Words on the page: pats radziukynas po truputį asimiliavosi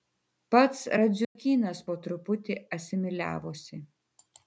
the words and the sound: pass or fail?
fail